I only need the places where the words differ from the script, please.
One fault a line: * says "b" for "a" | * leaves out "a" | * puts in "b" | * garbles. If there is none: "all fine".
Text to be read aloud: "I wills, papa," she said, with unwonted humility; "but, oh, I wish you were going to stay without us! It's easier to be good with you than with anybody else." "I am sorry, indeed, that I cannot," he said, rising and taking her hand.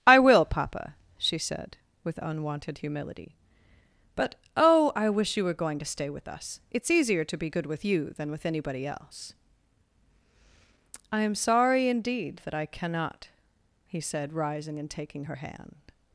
* says "will" for "wills"
* says "with" for "without"